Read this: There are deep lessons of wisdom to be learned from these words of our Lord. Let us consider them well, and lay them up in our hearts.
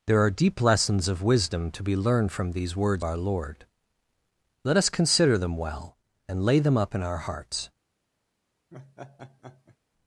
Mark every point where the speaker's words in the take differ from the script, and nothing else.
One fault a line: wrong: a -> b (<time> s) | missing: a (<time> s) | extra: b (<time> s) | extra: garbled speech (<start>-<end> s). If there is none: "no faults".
missing: of (3.0 s)